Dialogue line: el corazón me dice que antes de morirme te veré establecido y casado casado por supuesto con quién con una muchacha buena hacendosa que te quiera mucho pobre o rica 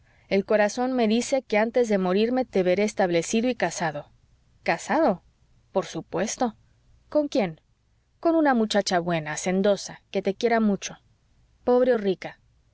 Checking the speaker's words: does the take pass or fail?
pass